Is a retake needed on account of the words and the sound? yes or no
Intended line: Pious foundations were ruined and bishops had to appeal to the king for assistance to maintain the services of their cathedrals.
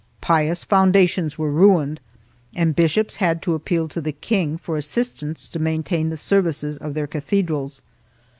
no